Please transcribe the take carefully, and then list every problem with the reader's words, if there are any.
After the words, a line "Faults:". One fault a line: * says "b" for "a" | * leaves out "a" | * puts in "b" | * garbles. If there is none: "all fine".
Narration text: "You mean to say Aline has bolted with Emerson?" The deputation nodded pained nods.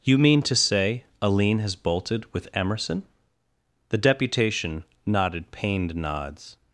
"You mean to say Aline has bolted with Emerson?" The deputation nodded pained nods.
Faults:
all fine